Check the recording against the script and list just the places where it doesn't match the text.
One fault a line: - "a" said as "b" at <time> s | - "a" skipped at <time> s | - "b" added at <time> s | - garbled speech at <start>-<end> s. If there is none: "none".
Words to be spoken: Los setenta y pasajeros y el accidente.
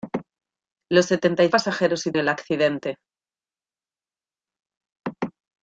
none